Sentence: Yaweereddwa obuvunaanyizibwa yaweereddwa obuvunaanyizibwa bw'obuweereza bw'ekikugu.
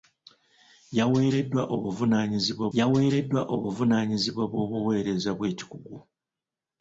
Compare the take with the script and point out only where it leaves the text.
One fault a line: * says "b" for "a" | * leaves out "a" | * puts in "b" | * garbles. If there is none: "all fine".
all fine